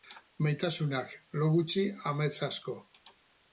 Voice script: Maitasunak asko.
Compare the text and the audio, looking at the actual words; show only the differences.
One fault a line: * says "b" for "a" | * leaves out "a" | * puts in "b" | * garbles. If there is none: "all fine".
* puts in "lo gutxi amets"